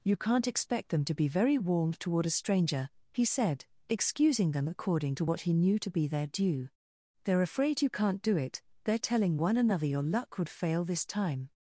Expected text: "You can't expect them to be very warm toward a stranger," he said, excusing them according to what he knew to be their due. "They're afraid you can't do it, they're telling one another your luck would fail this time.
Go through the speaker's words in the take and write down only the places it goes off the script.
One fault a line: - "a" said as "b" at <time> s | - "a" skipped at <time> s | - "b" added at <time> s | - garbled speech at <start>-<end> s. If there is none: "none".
none